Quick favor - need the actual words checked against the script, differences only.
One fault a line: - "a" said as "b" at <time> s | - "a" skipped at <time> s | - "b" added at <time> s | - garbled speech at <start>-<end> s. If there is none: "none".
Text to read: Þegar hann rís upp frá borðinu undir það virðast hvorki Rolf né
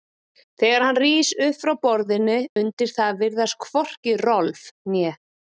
none